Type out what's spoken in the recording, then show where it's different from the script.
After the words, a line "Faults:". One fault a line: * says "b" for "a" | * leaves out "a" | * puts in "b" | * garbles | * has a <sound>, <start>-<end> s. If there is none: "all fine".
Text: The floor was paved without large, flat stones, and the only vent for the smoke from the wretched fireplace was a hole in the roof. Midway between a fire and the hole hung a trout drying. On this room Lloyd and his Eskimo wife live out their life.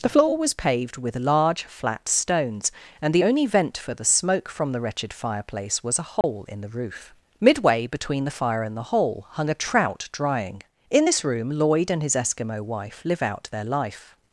The floor was paved with large, flat stones, and the only vent for the smoke from the wretched fireplace was a hole in the roof. Midway between the fire and the hole hung a trout drying. In this room Lloyd and his Eskimo wife live out their life.
Faults:
* says "with" for "without"
* has a dropout, 6.2-6.2 s
* says "the" for "a"
* says "In" for "On"